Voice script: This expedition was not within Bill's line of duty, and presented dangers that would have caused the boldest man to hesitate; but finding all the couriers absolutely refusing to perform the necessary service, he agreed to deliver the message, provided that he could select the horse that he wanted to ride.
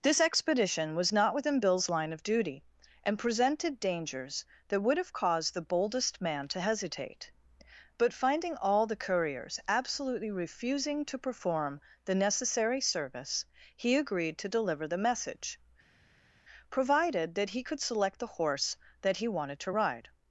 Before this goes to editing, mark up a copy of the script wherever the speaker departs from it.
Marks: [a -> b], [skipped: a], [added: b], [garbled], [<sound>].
This expedition was not within Bill's line of duty, and presented dangers that would have caused the boldest man to hesitate; but finding all the couriers absolutely refusing to perform the necessary service, he agreed to deliver the message, provided that he could select the horse that he wanted to ride.